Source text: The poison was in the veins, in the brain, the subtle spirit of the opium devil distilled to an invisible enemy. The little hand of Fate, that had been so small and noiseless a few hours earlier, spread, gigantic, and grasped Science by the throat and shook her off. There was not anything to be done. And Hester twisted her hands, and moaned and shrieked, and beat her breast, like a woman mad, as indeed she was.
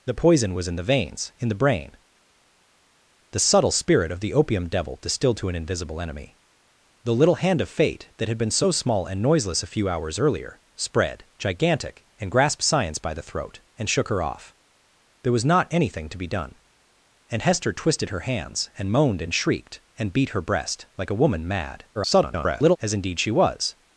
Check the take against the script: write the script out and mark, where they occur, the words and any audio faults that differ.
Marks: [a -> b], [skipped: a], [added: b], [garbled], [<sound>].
The poison was in the veins, in the brain, the subtle spirit of the opium devil distilled to an invisible enemy. The little hand of Fate, that had been so small and noiseless a few hours earlier, spread, gigantic, and grasped Science by the throat and shook her off. There was not anything to be done. And Hester twisted her hands, and moaned and shrieked, and beat her breast, like a woman mad, [garbled] as indeed she was.